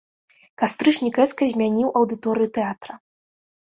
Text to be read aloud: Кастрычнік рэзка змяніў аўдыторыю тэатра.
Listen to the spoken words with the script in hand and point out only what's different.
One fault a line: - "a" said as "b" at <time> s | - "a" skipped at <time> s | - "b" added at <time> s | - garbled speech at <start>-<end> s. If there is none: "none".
none